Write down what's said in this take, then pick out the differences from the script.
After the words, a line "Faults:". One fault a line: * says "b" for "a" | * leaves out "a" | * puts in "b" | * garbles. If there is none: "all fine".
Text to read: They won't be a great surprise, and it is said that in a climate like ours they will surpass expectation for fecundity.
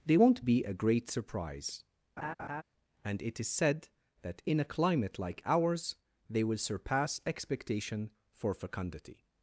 They won't be a great surprise, and it is said that in a climate like ours they will surpass expectation for fecundity.
Faults:
all fine